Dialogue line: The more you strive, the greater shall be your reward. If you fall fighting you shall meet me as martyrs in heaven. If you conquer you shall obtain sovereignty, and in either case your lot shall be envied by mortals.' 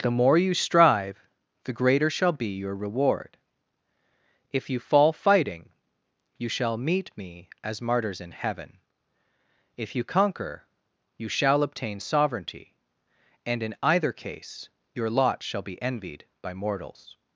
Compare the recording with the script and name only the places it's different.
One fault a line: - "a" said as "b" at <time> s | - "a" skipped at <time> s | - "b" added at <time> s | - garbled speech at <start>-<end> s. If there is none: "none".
none